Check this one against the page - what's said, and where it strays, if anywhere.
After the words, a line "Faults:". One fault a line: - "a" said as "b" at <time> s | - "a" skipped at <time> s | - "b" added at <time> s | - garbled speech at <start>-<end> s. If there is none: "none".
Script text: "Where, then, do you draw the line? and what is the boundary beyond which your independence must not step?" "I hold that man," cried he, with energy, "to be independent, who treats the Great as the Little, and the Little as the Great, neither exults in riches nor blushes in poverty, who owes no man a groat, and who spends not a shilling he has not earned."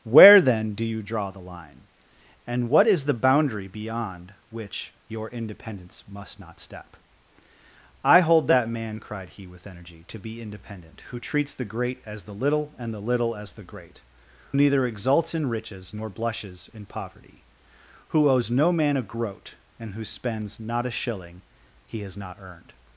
"Where, then, do you draw the line? and what is the boundary beyond which your independence must not step?" "I hold that man," cried he, with energy, "to be independent, who treats the Great as the Little, and the Little as the Great, neither exults in riches nor blushes in poverty, who owes no man a groat, and who spends not a shilling he has not earned."
Faults:
none